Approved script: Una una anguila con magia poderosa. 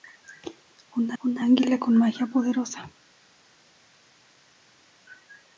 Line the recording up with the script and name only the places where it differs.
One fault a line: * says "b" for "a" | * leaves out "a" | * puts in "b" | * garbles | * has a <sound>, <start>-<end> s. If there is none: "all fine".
all fine